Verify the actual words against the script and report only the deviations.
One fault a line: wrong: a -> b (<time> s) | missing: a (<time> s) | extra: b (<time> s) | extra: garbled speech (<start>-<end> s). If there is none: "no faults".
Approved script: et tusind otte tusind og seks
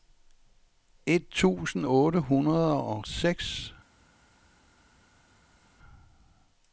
wrong: tusind -> hundrede (2.2 s)